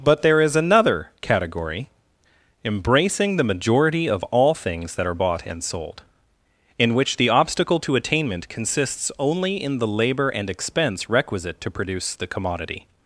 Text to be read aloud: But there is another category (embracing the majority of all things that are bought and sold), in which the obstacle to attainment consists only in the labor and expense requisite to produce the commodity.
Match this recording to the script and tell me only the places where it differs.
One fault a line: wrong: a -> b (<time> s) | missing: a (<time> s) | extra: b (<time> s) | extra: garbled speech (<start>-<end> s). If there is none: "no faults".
no faults